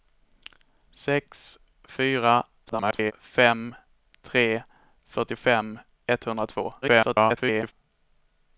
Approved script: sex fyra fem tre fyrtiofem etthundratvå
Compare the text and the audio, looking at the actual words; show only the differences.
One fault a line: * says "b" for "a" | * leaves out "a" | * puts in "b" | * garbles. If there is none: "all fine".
* garbles
* garbles